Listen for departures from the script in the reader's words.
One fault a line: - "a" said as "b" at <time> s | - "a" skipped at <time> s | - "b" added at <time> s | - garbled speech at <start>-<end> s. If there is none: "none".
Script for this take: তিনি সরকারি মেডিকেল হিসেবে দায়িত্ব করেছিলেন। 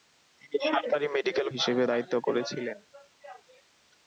none